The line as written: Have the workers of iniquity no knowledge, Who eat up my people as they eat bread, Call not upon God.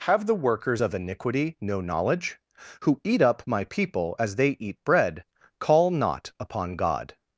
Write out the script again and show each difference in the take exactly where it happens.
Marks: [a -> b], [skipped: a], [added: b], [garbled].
Have the workers of iniquity no knowledge, Who eat up my people as they eat bread, Call not upon God.